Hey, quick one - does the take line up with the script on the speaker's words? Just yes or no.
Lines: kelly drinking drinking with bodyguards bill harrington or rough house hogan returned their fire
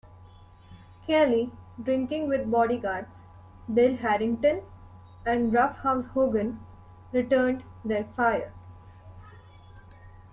no